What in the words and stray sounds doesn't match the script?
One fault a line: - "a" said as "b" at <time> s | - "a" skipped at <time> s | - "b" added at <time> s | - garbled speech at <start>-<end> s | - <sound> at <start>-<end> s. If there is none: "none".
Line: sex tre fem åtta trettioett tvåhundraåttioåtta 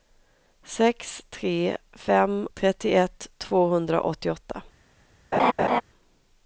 - "åtta" skipped at 2.5 s
- laugh at 5.3-5.8 s